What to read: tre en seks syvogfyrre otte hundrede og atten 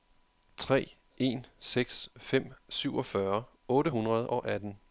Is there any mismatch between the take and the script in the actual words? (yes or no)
yes